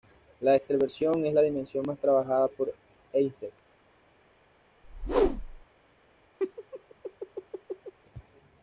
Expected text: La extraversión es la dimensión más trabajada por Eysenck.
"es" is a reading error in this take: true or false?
false